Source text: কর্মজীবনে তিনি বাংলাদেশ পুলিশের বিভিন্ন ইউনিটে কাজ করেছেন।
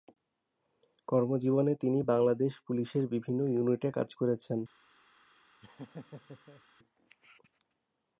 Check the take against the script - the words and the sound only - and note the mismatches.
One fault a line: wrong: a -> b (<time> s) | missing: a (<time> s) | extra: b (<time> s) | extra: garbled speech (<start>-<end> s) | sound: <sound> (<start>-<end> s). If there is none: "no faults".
sound: laugh (5.6-6.6 s)